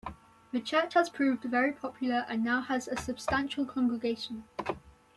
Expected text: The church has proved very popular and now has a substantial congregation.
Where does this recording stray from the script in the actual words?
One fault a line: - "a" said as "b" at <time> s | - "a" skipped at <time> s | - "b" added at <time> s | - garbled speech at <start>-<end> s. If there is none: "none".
none